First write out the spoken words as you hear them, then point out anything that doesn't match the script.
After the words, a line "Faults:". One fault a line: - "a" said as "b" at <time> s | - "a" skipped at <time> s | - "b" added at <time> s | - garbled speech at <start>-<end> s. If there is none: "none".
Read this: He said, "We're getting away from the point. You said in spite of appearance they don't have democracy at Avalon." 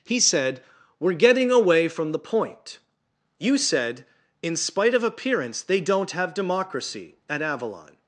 He said, "We're getting away from the point. You said in spite of appearance they don't have democracy at Avalon."
Faults:
none